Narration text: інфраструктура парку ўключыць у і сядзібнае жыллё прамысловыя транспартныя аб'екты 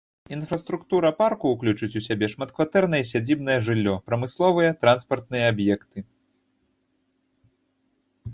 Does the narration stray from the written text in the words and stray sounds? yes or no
yes